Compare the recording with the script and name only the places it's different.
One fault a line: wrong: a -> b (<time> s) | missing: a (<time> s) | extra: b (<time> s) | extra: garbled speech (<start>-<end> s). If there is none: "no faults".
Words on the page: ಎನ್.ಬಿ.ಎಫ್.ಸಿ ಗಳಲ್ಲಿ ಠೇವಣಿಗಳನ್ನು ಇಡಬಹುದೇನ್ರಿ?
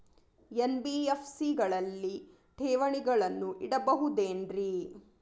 no faults